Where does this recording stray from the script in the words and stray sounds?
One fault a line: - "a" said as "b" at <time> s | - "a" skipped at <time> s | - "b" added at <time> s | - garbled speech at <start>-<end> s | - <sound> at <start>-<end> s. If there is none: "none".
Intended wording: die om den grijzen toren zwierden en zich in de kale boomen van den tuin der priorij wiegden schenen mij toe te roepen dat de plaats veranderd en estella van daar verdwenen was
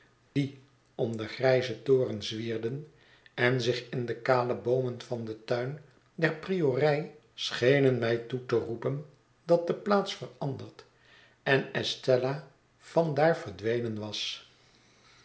- dropout at 0.3-0.4 s
- "wiegden" skipped at 7.2 s